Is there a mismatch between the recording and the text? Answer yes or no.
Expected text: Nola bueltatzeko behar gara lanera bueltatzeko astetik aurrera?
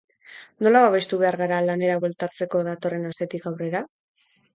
yes